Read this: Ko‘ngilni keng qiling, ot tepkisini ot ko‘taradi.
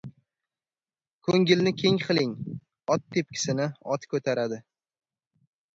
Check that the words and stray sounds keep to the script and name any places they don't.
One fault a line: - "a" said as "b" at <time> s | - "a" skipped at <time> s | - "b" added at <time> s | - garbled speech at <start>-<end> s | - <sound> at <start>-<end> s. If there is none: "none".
none